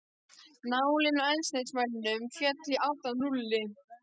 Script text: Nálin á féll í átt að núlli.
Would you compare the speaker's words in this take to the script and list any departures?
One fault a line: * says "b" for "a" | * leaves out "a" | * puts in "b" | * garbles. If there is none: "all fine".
* puts in "eldsneytismælinum"